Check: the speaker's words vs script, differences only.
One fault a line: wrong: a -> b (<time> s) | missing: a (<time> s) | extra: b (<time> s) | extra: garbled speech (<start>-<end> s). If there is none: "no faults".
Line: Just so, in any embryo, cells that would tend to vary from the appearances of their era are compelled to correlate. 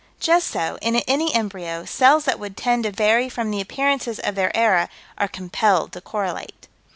no faults